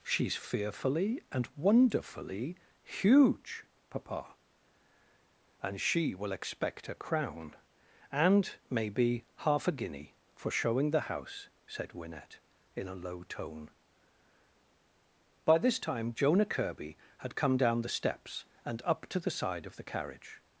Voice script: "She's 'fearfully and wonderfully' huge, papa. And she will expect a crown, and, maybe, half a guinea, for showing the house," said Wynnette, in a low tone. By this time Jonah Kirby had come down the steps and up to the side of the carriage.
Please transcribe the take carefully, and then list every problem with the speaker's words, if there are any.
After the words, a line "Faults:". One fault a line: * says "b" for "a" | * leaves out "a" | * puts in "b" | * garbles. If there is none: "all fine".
"She's 'fearfully and wonderfully' huge, papa. And she will expect a crown, and, maybe, half a guinea, for showing the house," said Wynnette, in a low tone. By this time Jonah Kirby had come down the steps and up to the side of the carriage.
Faults:
all fine